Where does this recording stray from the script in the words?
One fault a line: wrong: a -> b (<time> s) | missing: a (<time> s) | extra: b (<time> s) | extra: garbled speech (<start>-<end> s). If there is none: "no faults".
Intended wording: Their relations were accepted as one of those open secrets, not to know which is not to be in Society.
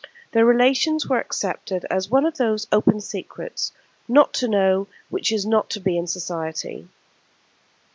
no faults